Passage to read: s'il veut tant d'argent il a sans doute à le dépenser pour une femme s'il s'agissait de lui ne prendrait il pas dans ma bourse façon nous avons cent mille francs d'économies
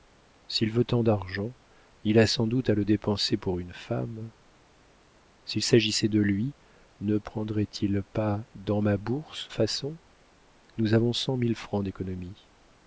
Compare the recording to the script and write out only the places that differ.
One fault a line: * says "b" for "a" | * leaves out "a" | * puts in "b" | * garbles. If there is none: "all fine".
all fine